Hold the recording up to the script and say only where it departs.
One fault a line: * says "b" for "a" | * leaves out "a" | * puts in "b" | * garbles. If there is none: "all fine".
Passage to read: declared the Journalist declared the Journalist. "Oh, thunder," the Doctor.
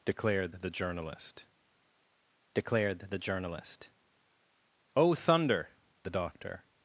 all fine